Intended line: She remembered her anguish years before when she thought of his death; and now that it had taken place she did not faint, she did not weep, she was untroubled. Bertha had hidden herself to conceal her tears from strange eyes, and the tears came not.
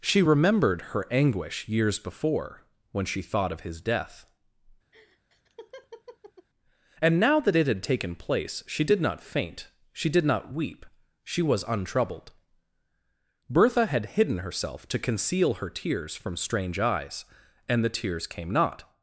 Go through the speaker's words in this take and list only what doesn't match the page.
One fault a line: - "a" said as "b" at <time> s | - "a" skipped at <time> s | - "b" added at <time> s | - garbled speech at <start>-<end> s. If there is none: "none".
none